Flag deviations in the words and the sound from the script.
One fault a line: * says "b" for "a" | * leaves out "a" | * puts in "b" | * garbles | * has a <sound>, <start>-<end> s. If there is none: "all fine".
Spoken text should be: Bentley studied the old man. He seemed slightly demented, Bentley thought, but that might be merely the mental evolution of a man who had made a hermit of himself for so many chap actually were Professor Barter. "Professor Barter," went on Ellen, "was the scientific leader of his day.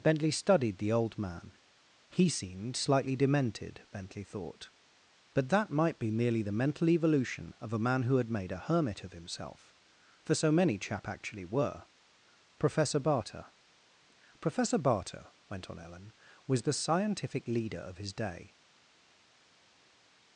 all fine